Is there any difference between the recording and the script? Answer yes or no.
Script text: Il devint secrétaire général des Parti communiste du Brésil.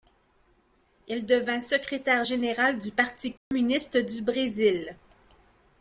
yes